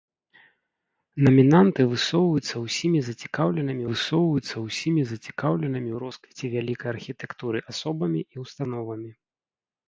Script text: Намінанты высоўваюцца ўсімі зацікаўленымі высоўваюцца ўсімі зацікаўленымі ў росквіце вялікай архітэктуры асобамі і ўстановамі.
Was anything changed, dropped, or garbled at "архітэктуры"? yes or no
no